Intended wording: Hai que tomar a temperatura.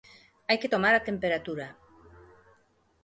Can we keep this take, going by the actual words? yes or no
yes